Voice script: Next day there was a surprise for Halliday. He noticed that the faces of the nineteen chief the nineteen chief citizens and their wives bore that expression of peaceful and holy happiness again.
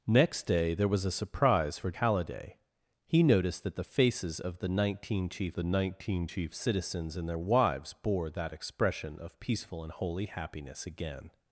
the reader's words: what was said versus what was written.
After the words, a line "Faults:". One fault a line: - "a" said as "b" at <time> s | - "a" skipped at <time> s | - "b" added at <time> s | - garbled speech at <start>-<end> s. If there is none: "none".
Next day there was a surprise for Halliday. He noticed that the faces of the nineteen chief the nineteen chief citizens and their wives bore that expression of peaceful and holy happiness again.
Faults:
none